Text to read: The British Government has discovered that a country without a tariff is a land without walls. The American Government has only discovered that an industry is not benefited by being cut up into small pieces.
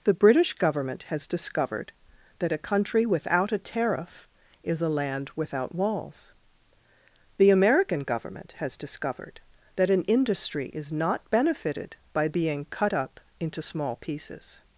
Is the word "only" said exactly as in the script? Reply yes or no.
no